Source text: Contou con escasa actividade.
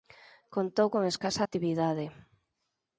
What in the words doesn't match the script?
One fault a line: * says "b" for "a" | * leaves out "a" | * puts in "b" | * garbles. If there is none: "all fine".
all fine